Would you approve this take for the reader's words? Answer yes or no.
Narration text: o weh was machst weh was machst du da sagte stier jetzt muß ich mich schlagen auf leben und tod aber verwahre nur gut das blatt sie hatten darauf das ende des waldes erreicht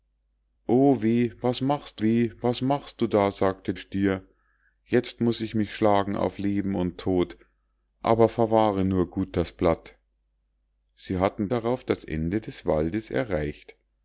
yes